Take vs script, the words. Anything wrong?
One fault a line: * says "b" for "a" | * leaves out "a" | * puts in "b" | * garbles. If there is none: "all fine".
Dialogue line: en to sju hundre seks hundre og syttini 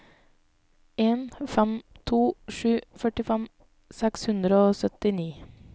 * puts in "fem"
* says "førtifem" for "hundre"